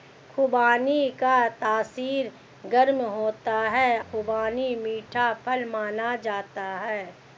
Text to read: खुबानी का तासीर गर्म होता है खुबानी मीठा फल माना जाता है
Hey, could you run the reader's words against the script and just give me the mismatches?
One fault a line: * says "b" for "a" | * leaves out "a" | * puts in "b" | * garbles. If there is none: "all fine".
all fine